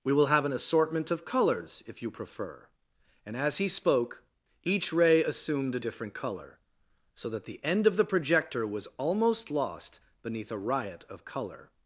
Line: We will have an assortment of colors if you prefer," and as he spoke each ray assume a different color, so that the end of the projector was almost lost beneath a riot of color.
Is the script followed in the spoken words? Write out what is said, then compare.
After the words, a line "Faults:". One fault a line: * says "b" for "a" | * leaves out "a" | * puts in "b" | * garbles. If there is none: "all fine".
We will have an assortment of colors if you prefer," and as he spoke each ray assumed a different color, so that the end of the projector was almost lost beneath a riot of color.
Faults:
* says "assumed" for "assume"